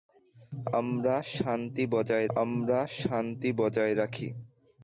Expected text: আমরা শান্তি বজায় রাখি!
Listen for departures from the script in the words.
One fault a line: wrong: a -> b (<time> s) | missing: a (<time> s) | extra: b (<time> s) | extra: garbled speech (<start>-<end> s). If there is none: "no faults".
extra: আমরা শান্তি বজায় (2.4 s)